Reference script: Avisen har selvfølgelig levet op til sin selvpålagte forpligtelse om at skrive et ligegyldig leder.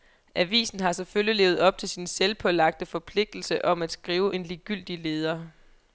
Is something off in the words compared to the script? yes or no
yes